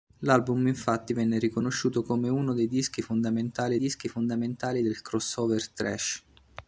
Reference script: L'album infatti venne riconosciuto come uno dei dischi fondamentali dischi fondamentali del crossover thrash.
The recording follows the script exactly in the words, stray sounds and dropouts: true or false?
true